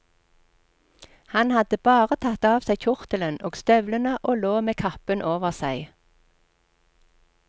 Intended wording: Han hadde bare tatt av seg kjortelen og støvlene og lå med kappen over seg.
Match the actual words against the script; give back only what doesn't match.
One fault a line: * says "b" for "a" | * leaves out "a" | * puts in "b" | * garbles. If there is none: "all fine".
all fine